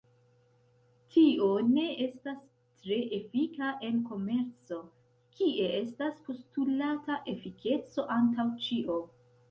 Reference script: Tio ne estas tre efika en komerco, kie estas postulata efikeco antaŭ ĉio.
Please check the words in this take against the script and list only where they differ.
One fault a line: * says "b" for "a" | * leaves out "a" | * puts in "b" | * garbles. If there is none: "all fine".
all fine